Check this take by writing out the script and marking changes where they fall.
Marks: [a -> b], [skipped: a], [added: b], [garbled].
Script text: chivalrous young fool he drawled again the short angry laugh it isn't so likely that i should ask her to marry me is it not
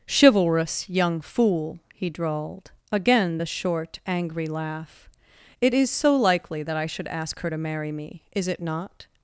chivalrous young fool he drawled again the short angry laugh it [isn't -> is] so likely that i should ask her to marry me is it not